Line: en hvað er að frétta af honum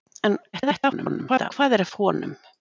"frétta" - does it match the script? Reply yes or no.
no